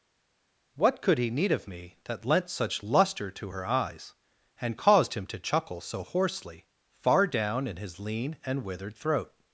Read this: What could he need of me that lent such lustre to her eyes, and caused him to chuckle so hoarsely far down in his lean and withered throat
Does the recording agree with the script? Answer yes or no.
yes